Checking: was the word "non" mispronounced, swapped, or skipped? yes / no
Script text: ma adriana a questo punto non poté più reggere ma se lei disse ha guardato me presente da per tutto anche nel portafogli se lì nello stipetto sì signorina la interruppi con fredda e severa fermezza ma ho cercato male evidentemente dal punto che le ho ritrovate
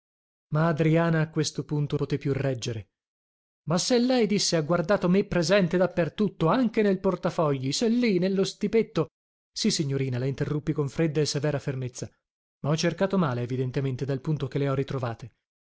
yes